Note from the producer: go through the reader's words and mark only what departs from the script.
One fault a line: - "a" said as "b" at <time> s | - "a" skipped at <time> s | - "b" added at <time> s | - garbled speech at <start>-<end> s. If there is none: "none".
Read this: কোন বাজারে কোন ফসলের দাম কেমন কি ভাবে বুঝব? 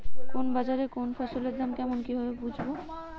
none